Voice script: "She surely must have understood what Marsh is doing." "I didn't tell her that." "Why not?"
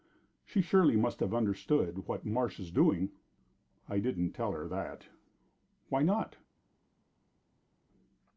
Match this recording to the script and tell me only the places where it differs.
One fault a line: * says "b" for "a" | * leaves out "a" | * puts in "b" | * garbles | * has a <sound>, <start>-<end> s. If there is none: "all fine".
all fine